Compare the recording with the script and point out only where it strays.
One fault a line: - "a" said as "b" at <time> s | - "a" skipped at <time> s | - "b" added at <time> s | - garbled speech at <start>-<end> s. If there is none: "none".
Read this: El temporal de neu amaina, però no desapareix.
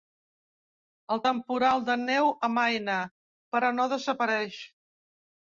none